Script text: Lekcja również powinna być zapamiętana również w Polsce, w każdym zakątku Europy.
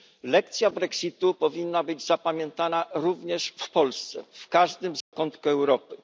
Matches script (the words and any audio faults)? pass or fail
fail